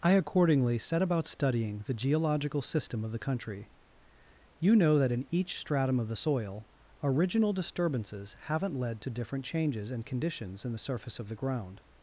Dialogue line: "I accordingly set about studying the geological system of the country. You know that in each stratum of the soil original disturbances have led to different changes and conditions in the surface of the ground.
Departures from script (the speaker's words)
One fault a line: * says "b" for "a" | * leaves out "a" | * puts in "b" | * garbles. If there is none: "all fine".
* says "haven't" for "have"